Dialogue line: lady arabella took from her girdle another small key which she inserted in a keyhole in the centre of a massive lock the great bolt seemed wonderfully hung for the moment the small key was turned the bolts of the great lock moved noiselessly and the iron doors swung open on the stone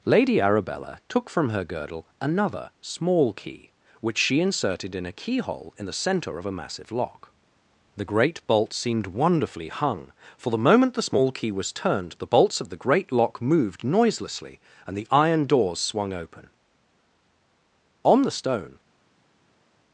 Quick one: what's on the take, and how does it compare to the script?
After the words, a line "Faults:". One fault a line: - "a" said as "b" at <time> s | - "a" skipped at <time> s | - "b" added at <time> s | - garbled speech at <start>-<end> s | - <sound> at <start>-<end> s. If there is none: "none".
lady arabella took from her girdle another small key which she inserted in a keyhole in the centre of a massive lock the great bolt seemed wonderfully hung for the moment the small key was turned the bolts of the great lock moved noiselessly and the iron doors swung open on the stone
Faults:
none